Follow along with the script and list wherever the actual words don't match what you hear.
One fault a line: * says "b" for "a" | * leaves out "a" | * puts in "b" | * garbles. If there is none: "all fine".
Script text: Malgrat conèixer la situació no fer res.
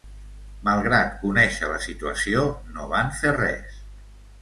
* puts in "van"